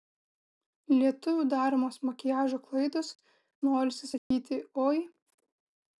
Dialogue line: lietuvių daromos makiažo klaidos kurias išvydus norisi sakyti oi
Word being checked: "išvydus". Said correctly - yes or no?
no